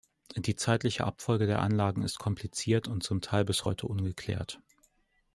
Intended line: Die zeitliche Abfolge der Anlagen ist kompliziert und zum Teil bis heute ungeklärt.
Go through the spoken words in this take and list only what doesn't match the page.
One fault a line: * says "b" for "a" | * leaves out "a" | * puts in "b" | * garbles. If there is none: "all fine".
all fine